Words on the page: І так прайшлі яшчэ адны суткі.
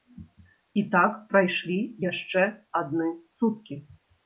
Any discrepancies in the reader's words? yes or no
no